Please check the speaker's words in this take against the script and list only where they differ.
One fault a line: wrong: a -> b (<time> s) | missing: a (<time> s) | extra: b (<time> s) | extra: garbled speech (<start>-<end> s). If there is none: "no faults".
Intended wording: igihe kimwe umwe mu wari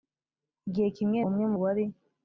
no faults